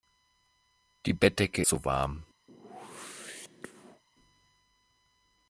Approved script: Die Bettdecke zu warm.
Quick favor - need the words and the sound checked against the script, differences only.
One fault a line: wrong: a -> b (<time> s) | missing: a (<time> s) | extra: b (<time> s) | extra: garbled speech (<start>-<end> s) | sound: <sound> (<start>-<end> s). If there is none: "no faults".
sound: whoosh (2.5-4.0 s)